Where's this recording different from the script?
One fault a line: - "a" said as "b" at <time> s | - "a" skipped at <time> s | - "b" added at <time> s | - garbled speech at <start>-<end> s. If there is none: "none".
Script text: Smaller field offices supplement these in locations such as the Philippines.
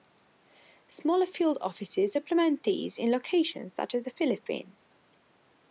none